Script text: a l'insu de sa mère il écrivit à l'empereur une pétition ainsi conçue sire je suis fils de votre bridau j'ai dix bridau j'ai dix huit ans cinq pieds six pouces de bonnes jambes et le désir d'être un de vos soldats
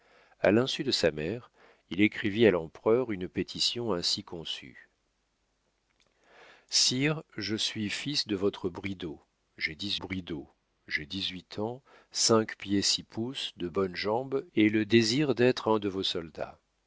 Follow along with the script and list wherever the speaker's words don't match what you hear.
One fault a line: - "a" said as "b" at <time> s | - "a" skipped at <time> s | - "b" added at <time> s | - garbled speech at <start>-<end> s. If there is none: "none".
none